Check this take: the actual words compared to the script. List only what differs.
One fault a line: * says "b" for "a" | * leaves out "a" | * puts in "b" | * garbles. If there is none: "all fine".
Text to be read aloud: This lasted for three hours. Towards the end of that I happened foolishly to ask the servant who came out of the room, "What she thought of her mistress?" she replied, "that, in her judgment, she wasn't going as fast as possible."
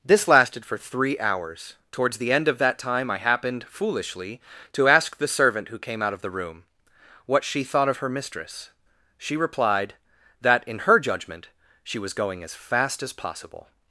* puts in "time"
* says "was" for "wasn't"